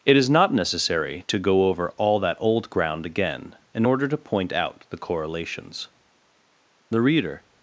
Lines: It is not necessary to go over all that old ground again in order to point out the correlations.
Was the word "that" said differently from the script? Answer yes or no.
no